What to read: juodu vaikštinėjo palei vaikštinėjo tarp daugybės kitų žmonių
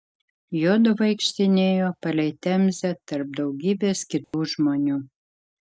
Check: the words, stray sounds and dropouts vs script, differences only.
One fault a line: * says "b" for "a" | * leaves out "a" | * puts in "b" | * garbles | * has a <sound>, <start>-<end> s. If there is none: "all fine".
* says "temzę" for "vaikštinėjo"
* has a dropout, 4.2-4.3 s